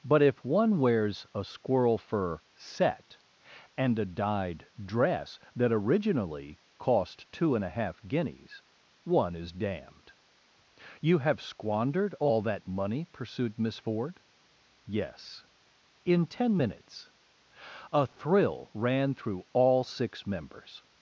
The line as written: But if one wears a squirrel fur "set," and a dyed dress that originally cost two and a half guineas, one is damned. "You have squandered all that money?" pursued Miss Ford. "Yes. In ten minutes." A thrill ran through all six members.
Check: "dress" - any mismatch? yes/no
no